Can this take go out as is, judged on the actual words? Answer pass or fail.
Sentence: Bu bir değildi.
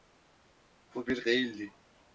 pass